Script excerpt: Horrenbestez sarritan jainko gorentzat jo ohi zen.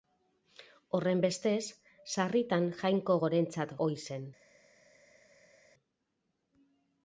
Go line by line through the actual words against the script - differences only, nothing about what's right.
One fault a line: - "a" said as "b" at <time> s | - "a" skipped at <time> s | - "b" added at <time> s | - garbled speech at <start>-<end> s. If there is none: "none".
- "jo" skipped at 3.7 s